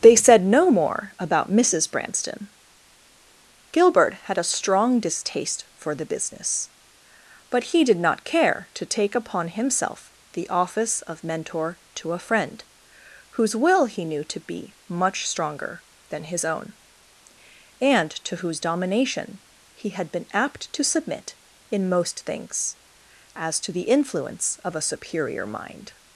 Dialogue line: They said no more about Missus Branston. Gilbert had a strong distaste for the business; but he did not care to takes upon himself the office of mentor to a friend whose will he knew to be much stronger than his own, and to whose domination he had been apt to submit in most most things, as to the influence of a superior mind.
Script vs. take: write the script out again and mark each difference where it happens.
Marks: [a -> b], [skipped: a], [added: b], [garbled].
They said no more about Missus Branston. Gilbert had a strong distaste for the business; but he did not care to [takes -> take] upon himself the office of mentor to a friend whose will he knew to be much stronger than his own, and to whose domination he had been apt to submit in most [skipped: most] things, as to the influence of a superior mind.